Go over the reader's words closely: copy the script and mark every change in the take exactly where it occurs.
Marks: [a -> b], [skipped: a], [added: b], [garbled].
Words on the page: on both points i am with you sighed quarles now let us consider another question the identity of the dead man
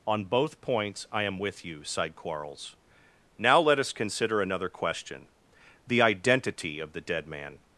on both points i am with you sighed quarles now let us consider another question the identity of the dead man